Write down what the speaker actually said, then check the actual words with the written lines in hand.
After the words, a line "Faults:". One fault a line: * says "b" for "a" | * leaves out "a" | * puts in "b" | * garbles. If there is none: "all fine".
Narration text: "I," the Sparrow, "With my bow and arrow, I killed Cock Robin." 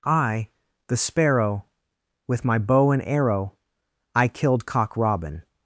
"I," the Sparrow, "With my bow and arrow, I killed Cock Robin."
Faults:
all fine